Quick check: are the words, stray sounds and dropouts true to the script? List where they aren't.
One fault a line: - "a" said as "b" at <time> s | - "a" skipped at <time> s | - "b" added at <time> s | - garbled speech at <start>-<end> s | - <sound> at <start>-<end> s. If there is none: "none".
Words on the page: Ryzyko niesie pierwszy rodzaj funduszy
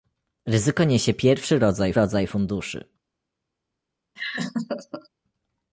- "rodzaj" added at 1.9 s
- laugh at 4.2-5.1 s